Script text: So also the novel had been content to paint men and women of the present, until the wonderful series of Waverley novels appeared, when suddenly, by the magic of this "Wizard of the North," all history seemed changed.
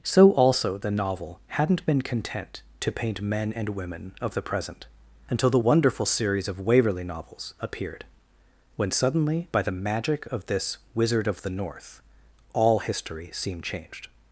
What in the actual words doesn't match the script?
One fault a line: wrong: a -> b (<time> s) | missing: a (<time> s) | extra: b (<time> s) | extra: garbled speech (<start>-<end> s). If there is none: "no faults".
wrong: had -> hadn't (1.5 s)